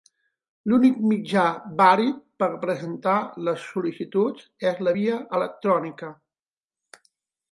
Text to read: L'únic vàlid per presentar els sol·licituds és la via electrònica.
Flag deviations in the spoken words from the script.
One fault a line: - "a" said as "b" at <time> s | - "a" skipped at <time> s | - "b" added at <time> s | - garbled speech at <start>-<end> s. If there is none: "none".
- "mitjà" added at 1.1 s
- "els" said as "les" at 3.5 s